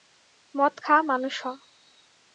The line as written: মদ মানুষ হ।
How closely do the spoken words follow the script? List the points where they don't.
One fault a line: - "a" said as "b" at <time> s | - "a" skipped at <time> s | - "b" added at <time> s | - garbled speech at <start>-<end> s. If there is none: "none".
- "খা" added at 0.8 s